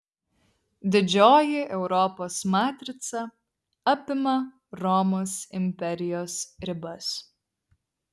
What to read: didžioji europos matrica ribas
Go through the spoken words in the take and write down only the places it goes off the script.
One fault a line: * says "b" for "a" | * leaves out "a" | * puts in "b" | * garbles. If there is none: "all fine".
* puts in "apima romos imperijos"